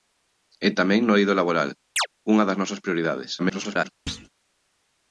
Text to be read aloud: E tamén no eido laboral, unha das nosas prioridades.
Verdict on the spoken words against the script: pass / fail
fail